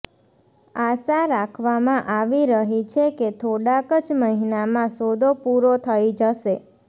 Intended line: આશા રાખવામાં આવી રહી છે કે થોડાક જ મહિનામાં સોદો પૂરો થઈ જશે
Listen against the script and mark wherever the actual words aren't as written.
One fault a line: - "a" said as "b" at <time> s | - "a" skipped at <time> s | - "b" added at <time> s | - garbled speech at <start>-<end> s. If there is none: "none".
none